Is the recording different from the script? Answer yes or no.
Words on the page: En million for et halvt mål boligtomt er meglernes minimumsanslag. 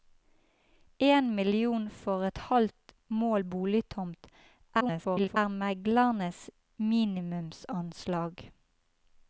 yes